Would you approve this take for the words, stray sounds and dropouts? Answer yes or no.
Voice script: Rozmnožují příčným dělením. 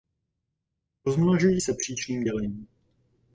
no